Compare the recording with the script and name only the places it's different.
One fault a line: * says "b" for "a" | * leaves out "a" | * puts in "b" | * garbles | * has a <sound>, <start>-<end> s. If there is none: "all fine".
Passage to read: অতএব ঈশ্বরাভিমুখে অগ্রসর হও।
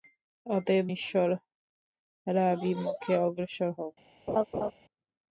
* has a laugh, 4.3-4.7 s